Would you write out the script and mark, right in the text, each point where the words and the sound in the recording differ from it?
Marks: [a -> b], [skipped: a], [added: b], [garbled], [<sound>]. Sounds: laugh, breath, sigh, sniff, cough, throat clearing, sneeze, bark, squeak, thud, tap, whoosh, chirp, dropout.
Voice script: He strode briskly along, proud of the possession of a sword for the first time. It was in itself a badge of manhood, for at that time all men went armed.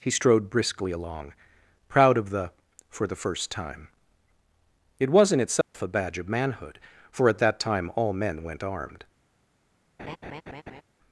He strode briskly along, proud of the [skipped: possession of a sword] for the first time. It was in itself [dropout] a badge of manhood, for at that time all men went armed. [laugh]